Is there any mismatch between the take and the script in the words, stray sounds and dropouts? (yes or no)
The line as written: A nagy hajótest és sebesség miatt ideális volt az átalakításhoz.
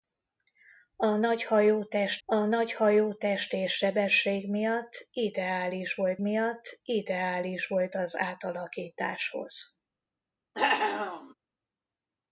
yes